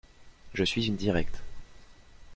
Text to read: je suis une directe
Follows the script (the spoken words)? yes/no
yes